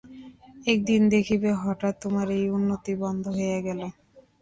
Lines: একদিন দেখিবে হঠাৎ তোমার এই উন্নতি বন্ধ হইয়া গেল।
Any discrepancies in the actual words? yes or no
no